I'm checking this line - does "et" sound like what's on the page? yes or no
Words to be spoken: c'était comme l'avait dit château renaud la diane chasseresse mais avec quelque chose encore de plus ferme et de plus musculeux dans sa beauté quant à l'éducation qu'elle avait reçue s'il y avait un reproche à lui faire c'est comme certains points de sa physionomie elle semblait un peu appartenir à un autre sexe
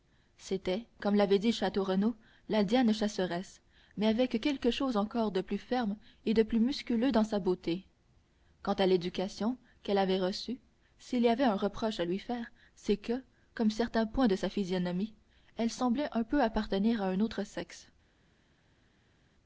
yes